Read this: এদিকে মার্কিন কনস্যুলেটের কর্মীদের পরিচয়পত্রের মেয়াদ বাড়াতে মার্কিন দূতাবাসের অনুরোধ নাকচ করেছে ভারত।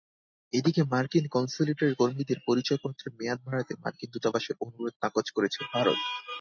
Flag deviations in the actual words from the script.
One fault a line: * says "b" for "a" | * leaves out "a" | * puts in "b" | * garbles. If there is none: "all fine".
all fine